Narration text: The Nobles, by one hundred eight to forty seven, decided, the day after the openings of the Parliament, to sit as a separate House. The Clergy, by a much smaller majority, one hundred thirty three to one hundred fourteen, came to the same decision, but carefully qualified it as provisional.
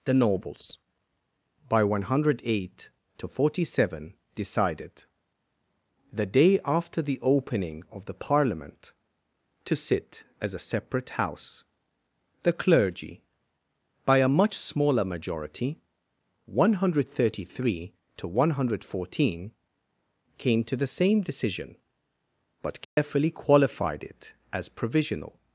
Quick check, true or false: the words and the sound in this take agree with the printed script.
false